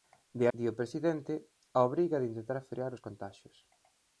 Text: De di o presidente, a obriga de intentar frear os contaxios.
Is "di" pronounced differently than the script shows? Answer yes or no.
no